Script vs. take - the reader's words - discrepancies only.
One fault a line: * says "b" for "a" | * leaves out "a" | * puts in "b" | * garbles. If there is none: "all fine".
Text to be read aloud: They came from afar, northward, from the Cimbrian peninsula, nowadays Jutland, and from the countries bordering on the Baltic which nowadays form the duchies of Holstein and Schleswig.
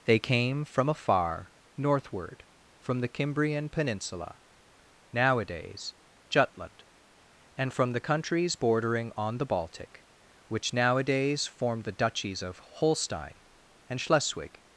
all fine